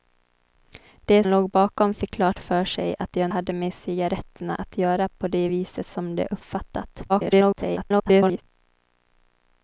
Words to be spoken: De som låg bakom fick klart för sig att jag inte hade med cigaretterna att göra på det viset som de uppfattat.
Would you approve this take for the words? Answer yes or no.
no